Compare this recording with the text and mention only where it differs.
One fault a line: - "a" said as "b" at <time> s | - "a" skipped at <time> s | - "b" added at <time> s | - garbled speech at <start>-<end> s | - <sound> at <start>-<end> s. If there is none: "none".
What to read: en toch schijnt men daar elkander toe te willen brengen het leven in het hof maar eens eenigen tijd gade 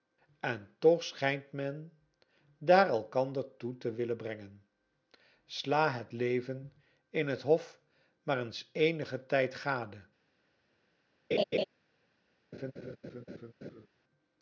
- "sla" added at 5.5 s
- laugh at 11.3-11.6 s
- laugh at 12.5-13.9 s